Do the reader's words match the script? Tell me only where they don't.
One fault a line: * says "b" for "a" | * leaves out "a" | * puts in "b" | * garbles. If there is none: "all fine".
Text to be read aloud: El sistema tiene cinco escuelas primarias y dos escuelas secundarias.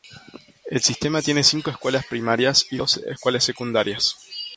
all fine